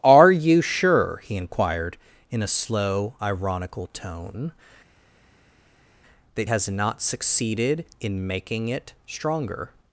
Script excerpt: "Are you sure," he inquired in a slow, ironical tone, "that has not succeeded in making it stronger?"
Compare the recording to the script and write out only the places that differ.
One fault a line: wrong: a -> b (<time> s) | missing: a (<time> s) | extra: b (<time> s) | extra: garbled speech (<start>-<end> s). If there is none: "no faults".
no faults